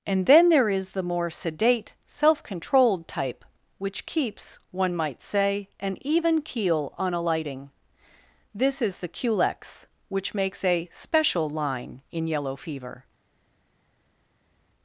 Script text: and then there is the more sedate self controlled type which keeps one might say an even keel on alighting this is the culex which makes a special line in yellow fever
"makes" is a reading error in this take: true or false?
false